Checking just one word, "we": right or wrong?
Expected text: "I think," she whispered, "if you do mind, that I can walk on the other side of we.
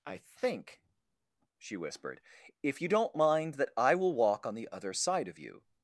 wrong